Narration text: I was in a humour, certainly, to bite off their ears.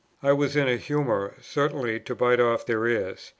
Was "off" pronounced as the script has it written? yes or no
yes